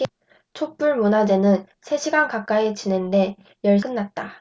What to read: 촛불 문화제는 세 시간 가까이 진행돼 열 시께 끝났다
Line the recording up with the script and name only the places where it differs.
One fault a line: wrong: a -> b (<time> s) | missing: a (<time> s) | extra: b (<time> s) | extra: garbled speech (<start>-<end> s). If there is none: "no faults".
missing: 시께 (3.8 s)